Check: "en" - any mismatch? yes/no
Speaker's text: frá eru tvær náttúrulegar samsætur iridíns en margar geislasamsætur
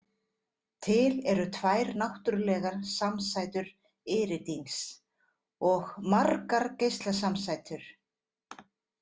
yes